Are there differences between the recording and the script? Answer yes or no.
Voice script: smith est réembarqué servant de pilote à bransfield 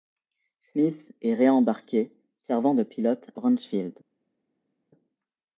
yes